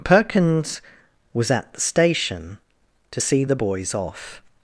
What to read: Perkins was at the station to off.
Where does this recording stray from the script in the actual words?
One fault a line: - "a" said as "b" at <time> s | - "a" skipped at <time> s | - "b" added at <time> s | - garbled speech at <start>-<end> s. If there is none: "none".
- "see the boys" added at 3.2 s